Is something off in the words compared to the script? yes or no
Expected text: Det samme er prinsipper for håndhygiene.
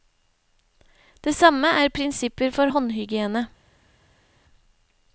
no